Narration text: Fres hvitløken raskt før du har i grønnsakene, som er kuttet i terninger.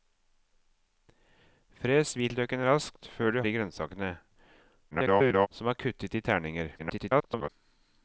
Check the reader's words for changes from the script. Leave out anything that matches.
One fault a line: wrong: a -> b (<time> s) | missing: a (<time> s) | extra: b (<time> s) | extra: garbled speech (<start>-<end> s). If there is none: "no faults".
missing: har (3.4 s)
extra: garbled speech (4.9-5.5 s)
extra: garbled speech (6.8-7.5 s)